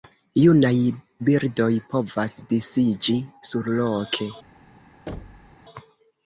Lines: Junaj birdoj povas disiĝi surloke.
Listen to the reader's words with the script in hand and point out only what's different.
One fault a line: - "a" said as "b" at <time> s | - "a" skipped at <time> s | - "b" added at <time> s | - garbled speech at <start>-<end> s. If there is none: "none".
none